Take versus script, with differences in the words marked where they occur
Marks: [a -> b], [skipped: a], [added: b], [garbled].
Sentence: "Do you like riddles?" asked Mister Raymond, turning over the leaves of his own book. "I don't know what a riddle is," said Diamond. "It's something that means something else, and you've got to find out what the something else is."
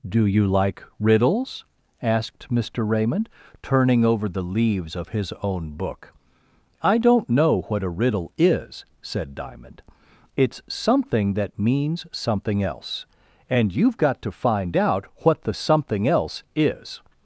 "Do you like riddles?" asked Mister Raymond, turning over the leaves of his own book. "I don't know what a riddle is," said Diamond. "It's something that means something else, and you've got to find out what the something else is."